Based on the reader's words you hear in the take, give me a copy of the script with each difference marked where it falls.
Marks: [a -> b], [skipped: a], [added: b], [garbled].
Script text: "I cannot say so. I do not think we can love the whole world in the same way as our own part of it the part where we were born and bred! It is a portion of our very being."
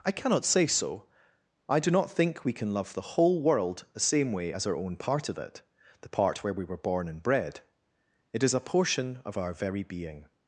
"I cannot say so. I do not think we can love the whole world [skipped: in] the same way as our own part of it the part where we were born and bred! It is a portion of our very being."